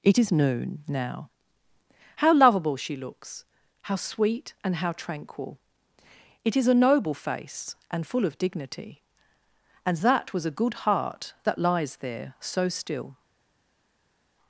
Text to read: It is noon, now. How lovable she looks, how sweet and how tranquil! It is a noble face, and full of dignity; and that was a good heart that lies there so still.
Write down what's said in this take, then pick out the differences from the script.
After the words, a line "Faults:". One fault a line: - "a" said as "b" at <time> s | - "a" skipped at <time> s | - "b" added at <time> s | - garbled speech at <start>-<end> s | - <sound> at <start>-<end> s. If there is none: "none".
It is noon, now. How lovable she looks, how sweet and how tranquil! It is a noble face, and full of dignity; and that was a good heart that lies there so still.
Faults:
none